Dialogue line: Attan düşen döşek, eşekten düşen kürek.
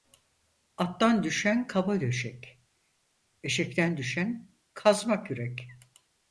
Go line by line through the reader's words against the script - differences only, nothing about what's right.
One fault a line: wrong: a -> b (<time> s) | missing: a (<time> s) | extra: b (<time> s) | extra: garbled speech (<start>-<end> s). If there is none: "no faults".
extra: kaba (1.7 s)
extra: kazma (4.7 s)